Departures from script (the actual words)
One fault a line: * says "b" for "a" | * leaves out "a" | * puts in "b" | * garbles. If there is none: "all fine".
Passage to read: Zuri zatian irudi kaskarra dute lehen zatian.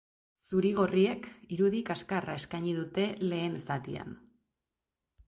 * says "gorriek" for "zatian"
* puts in "eskaini"